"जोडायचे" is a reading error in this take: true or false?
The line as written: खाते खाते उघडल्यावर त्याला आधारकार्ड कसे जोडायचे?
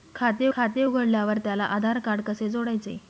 false